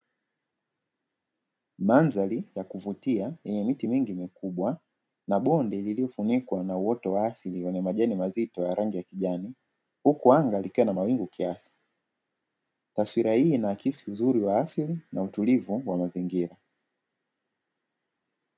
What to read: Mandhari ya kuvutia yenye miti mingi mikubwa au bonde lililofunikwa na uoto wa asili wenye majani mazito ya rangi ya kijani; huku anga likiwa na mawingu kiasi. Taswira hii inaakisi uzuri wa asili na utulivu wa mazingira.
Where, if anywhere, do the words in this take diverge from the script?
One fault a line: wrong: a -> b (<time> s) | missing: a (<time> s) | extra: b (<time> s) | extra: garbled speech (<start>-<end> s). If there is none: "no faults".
wrong: au -> na (5.3 s)